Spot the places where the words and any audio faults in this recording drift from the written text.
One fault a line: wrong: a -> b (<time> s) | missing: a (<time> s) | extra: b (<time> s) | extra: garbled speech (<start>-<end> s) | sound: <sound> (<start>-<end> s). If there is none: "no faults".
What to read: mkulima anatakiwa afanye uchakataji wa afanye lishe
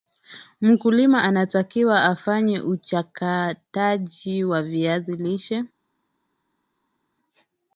wrong: afanye -> viazi (4.6 s)